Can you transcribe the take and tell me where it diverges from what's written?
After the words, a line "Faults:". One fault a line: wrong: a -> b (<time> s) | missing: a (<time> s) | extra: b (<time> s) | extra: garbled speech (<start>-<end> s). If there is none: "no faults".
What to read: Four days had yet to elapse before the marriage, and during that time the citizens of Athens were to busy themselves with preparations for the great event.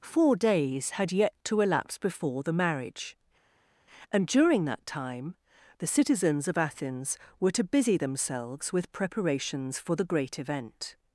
Four days had yet to elapse before the marriage, and during that time the citizens of Athens were to busy themselves with preparations for the great event.
Faults:
no faults